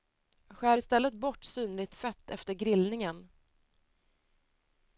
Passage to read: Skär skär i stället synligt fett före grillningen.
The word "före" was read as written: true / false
false